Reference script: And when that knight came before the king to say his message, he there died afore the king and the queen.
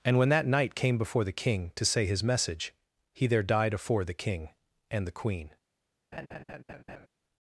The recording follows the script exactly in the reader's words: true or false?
true